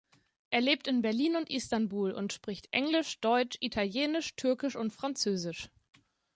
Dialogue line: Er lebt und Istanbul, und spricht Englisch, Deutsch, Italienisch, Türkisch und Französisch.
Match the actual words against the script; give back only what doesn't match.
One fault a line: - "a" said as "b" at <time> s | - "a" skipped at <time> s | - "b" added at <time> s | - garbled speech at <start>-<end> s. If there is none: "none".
- "in Berlin" added at 0.9 s